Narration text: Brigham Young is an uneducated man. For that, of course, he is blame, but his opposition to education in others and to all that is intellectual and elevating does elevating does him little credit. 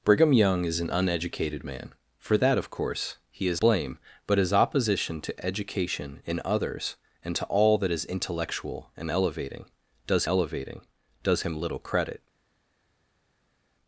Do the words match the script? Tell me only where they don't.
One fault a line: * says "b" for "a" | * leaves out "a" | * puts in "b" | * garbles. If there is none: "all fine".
all fine